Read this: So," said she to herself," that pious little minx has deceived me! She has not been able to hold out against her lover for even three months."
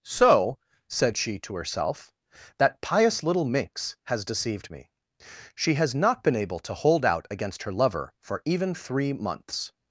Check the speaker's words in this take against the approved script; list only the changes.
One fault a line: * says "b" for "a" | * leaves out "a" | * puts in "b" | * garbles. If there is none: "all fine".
all fine